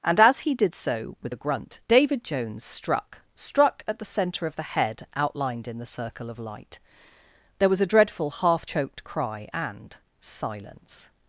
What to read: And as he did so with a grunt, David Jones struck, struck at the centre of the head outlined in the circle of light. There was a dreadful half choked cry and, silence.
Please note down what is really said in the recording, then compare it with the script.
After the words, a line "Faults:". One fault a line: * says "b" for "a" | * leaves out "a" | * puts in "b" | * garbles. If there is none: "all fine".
And as he did so with a grunt, David Jones struck, struck at the centre of the head outlined in the circle of light. There was a dreadful half choked cry and, silence.
Faults:
all fine